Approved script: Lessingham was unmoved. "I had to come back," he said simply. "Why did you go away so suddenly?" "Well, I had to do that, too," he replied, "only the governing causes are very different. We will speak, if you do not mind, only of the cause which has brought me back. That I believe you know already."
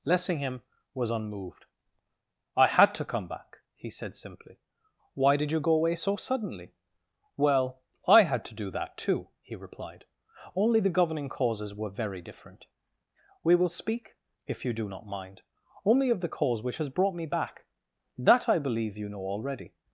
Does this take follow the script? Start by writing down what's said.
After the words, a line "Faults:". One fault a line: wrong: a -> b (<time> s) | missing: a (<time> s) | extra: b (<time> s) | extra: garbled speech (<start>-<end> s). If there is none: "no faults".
Lessingham was unmoved. "I had to come back," he said simply. "Why did you go away so suddenly?" "Well, I had to do that, too," he replied, "only the governing causes were very different. We will speak, if you do not mind, only of the cause which has brought me back. That I believe you know already."
Faults:
wrong: are -> were (11.8 s)